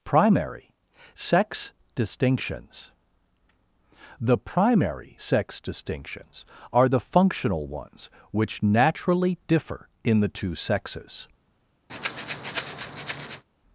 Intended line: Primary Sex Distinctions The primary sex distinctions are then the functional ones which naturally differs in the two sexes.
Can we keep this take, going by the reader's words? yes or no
no